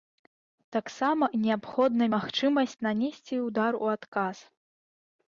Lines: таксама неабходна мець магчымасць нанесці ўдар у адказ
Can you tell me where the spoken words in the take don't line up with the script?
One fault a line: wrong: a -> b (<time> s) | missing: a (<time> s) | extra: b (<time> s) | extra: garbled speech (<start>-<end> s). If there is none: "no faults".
missing: мець (2.1 s)